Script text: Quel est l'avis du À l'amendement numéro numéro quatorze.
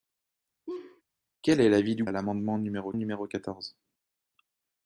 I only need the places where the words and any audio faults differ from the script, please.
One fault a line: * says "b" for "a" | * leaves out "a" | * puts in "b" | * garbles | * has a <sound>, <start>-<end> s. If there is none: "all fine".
* has a laugh, 0.7-1.0 s